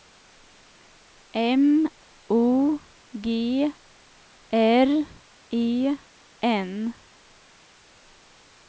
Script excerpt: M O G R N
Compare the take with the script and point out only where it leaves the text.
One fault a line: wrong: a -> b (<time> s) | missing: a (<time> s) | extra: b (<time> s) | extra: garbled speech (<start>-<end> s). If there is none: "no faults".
extra: E (5.5 s)